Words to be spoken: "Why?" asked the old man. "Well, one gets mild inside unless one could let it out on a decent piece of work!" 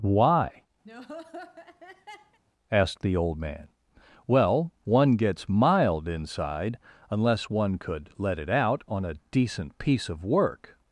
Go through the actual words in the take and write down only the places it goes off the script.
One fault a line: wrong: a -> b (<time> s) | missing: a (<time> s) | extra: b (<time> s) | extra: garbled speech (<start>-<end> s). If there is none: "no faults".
no faults